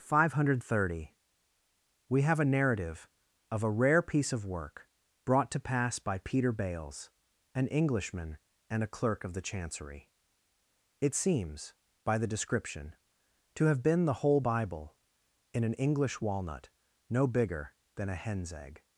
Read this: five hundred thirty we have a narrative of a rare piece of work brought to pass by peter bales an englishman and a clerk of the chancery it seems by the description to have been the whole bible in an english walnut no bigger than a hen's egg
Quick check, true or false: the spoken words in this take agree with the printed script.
true